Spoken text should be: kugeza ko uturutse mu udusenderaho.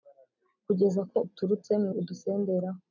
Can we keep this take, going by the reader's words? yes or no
yes